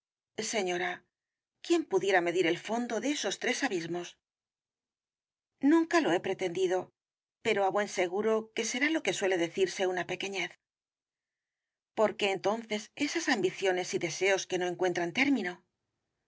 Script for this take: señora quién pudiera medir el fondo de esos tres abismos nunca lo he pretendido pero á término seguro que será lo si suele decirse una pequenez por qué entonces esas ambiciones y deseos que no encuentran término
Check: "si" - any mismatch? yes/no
yes